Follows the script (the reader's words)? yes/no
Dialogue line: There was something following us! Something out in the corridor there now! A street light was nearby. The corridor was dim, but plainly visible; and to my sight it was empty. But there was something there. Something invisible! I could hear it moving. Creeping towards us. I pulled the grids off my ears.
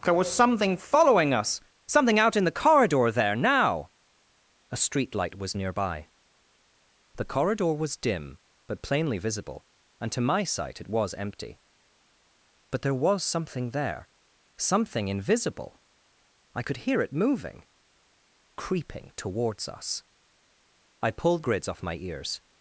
no